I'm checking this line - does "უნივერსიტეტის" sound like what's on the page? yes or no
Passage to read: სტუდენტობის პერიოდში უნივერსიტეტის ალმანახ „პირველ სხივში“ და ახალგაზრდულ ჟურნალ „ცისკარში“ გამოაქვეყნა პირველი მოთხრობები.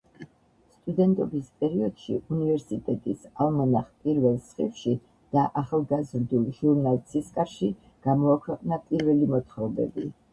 yes